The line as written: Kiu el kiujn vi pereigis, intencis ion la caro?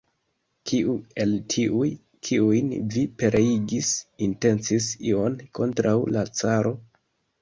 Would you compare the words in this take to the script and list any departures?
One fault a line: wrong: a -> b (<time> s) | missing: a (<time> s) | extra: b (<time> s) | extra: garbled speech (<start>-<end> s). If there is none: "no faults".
extra: tiuj (1.5 s)
extra: kontraŭ (5.6 s)